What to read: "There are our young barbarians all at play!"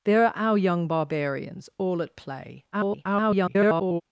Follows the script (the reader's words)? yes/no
no